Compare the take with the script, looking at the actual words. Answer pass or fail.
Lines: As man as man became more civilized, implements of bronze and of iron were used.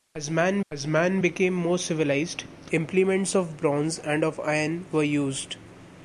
pass